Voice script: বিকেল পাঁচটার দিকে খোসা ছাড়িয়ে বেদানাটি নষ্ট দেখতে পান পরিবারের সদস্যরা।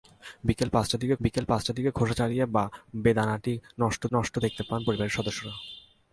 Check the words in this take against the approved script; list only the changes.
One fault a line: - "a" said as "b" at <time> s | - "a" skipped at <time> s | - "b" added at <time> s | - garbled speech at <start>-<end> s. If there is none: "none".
- "বিকেল পাঁচটার দিকে" added at 1.2 s
- "নষ্ট" added at 4.1 s